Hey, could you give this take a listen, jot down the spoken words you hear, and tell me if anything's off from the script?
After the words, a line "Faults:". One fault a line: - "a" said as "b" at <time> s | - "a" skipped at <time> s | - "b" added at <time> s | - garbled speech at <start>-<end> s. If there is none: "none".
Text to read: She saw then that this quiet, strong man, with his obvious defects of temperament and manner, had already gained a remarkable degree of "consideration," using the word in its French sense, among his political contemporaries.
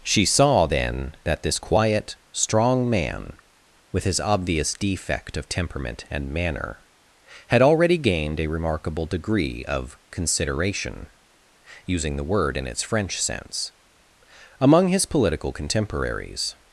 She saw then that this quiet, strong man, with his obvious defect of temperament and manner, had already gained a remarkable degree of "consideration," using the word in its French sense, among his political contemporaries.
Faults:
- "defects" said as "defect" at 4.7 s